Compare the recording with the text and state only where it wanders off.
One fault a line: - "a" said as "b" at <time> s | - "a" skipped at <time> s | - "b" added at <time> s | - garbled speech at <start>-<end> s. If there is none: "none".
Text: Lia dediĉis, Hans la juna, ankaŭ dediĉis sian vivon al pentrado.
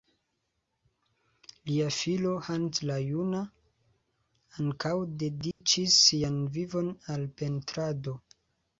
- "dediĉis" said as "filo" at 2.0 s